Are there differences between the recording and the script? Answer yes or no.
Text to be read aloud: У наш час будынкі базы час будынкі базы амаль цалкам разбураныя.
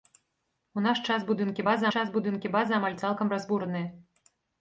no